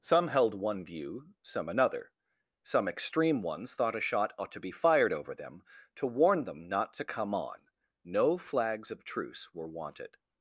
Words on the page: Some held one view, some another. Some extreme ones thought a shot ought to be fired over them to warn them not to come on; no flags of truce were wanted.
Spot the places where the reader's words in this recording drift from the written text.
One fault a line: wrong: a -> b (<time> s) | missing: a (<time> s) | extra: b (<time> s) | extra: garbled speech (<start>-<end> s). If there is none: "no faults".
no faults